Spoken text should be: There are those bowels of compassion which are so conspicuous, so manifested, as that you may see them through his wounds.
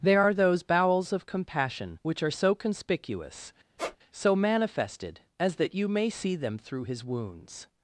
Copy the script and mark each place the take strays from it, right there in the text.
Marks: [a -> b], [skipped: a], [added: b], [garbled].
There are those bowels of compassion which are so conspicuous, so manifested, as that you may see them through his wounds.